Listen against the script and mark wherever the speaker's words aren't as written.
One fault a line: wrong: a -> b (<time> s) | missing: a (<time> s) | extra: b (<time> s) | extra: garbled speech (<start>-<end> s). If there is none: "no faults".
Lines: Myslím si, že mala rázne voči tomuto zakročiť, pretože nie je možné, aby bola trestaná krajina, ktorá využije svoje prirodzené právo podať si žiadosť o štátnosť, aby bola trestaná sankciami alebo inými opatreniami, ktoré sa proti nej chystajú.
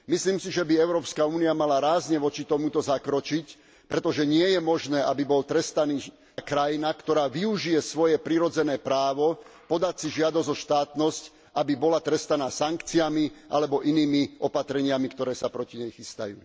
extra: by Európska únia (0.7 s)